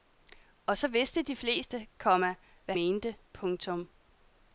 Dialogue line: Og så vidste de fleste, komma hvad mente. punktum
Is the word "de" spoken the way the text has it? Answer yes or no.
yes